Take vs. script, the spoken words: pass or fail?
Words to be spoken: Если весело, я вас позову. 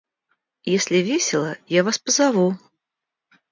pass